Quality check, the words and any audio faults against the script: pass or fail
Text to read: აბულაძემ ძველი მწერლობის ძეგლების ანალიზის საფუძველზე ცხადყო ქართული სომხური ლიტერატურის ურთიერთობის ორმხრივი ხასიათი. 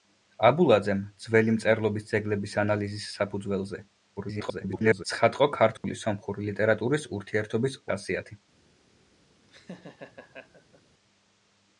fail